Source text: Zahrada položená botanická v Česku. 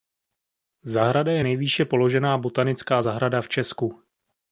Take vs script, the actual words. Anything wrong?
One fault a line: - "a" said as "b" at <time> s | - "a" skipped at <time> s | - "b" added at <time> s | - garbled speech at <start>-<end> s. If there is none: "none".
- "je nejvýše" added at 1.3 s
- "zahrada" added at 3.0 s